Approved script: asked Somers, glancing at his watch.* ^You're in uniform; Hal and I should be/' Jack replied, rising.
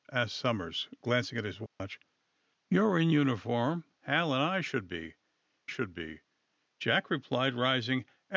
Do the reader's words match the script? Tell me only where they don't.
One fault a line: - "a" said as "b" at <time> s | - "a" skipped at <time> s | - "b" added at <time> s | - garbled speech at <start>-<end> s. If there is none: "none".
- "should be" added at 5.7 s